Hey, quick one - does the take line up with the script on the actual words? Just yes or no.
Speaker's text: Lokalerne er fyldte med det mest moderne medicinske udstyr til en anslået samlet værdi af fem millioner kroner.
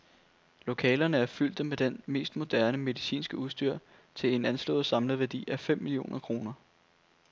yes